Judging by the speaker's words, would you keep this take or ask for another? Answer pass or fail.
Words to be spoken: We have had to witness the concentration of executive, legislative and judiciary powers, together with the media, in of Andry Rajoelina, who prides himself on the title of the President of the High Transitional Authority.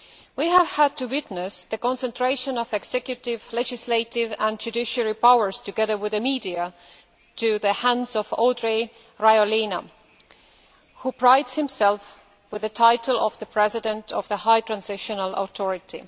fail